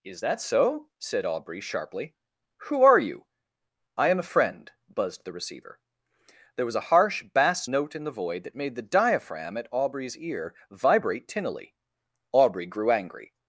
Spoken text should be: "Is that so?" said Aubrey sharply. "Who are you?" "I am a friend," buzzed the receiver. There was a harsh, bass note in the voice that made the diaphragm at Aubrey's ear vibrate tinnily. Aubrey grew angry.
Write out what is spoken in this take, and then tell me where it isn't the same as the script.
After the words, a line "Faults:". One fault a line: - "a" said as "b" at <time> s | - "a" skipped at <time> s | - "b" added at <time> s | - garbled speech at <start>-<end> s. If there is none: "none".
"Is that so?" said Aubrey sharply. "Who are you?" "I am a friend," buzzed the receiver. There was a harsh, bass note in the void that made the diaphragm at Aubrey's ear vibrate tinnily. Aubrey grew angry.
Faults:
- "voice" said as "void" at 8.1 s